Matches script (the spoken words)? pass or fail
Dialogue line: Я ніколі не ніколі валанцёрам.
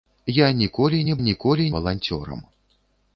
pass